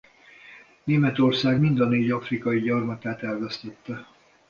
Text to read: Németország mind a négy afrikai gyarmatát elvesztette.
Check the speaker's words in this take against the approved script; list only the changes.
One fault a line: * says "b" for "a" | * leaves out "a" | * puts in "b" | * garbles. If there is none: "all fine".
all fine